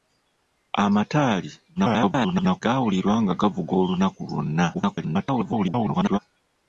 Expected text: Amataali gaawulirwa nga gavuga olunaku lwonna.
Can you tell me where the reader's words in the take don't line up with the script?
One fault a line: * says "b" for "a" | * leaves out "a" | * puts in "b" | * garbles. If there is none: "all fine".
* garbles
* garbles